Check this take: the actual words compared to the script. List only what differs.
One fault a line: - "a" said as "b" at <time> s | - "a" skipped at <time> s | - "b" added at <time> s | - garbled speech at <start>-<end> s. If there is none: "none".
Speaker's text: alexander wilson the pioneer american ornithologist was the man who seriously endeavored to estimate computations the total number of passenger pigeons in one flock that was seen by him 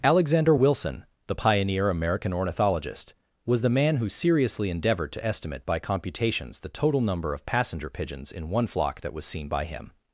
- "by" added at 5.7 s